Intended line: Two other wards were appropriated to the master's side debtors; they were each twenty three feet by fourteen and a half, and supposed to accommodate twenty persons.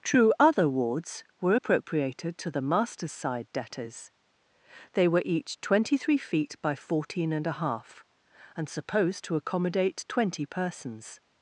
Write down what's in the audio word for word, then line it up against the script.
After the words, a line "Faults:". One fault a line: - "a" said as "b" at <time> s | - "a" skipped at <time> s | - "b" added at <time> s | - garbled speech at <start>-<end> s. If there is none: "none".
True other wards were appropriated to the master's side debtors; they were each twenty three feet by fourteen and a half, and supposed to accommodate twenty persons.
Faults:
- "Two" said as "True" at 0.0 s